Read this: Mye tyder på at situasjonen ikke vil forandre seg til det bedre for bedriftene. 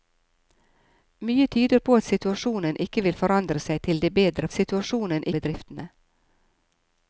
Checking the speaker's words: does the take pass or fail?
fail